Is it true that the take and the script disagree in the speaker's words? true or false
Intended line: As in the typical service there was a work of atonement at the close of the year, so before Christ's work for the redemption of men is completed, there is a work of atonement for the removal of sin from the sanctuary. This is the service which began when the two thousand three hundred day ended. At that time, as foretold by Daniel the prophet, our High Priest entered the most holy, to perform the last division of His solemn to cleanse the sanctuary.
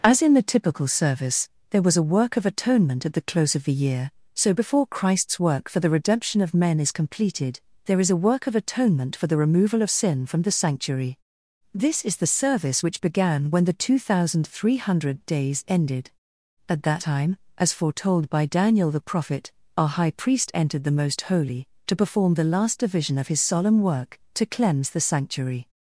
true